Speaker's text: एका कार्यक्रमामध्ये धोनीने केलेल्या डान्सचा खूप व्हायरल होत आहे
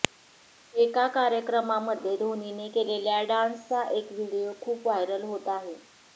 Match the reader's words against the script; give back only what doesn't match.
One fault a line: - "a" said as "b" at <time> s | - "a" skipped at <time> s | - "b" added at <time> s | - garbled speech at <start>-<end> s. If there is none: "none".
- "एक व्हिडिओ" added at 3.9 s